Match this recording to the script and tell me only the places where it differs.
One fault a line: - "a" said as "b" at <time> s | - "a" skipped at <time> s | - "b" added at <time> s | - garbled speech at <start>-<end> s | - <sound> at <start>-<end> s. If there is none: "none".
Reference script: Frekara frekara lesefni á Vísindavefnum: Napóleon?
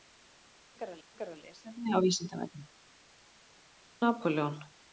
none